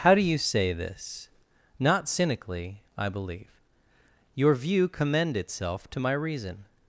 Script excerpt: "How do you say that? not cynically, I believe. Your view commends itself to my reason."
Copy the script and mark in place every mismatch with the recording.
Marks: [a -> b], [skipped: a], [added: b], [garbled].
"How do you say [that? -> this] not cynically, I believe. Your view [commends -> commend] itself to my reason."